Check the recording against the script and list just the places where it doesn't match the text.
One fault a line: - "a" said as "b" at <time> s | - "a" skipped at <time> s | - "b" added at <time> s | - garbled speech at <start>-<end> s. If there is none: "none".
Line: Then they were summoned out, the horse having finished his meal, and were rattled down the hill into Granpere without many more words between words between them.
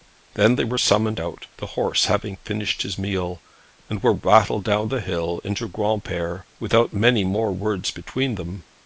- "words between" skipped at 8.3 s